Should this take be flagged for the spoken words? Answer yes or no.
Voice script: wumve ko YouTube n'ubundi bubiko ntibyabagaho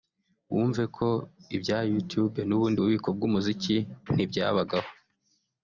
yes